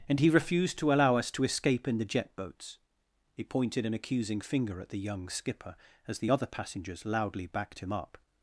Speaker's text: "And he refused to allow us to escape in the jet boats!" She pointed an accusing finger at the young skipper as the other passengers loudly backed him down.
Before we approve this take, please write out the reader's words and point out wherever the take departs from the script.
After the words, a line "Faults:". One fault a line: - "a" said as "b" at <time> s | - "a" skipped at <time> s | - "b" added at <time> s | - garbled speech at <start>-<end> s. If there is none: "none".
"And he refused to allow us to escape in the jet boats!" He pointed an accusing finger at the young skipper as the other passengers loudly backed him up.
Faults:
- "She" said as "He" at 3.3 s
- "down" said as "up" at 7.9 s